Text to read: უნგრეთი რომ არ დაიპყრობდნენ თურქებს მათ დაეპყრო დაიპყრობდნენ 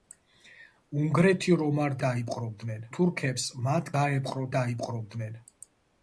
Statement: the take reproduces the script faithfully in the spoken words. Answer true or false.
true